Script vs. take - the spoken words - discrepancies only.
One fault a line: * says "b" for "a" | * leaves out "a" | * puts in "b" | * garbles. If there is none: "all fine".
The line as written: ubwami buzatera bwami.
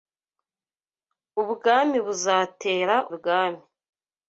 all fine